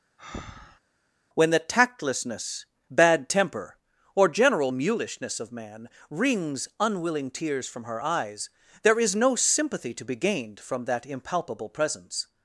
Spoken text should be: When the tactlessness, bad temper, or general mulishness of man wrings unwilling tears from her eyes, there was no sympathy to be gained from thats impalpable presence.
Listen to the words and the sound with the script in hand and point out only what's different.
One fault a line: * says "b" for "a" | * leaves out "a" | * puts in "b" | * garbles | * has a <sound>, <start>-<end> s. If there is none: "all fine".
* has a breath, 0.2-0.8 s
* says "is" for "was"
* says "that" for "thats"